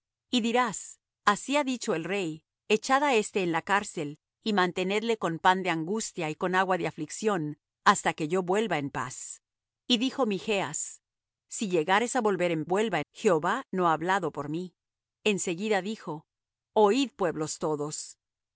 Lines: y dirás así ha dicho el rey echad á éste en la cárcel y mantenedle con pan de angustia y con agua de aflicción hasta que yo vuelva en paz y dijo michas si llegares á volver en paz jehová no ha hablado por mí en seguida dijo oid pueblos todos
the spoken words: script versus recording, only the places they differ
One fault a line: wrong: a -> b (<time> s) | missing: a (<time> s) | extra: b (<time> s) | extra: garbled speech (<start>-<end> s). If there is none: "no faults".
wrong: paz -> vuelva (12.6 s)